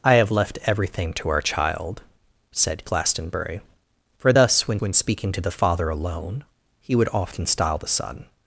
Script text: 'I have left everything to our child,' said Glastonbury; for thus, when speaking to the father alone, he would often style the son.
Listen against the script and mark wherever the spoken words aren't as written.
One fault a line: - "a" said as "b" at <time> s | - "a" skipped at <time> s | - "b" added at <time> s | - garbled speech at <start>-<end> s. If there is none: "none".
- "when" added at 4.8 s